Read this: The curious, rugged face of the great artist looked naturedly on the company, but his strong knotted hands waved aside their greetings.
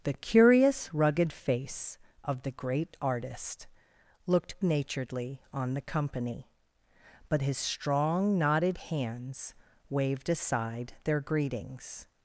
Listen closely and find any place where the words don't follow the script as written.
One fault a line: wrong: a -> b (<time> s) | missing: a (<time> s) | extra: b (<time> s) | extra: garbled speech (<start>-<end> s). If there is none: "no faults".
no faults